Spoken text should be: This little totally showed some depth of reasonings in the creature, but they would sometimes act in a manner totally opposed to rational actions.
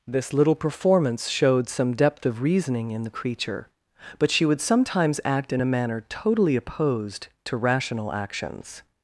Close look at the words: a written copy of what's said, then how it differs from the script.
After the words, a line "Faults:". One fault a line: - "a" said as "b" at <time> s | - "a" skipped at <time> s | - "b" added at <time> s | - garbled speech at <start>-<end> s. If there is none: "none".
This little performance showed some depth of reasoning in the creature, but she would sometimes act in a manner totally opposed to rational actions.
Faults:
- "totally" said as "performance" at 0.6 s
- "reasonings" said as "reasoning" at 2.4 s
- "they" said as "she" at 4.3 s